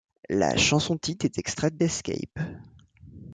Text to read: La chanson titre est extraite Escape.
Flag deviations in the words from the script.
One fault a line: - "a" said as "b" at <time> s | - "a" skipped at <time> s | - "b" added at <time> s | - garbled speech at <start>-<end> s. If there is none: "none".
none